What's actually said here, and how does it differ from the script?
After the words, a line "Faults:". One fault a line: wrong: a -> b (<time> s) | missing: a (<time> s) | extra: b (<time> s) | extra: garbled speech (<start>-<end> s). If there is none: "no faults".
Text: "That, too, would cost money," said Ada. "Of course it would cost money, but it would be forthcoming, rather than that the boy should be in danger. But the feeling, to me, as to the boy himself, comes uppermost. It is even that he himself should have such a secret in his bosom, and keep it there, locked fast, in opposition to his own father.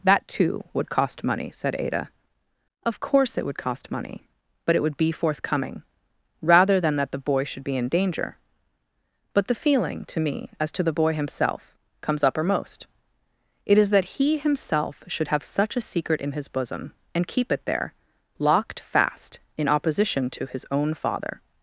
"That, too, would cost money," said Ada. "Of course it would cost money, but it would be forthcoming, rather than that the boy should be in danger. But the feeling, to me, as to the boy himself, comes uppermost. It is that he himself should have such a secret in his bosom, and keep it there, locked fast, in opposition to his own father.
Faults:
missing: even (13.9 s)